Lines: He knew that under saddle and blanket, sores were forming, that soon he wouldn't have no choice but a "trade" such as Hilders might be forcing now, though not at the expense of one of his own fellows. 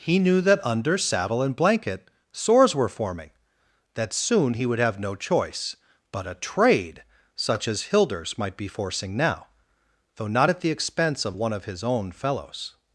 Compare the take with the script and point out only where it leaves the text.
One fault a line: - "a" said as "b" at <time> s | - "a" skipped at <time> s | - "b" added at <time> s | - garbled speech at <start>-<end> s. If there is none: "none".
- "wouldn't" said as "would" at 4.7 s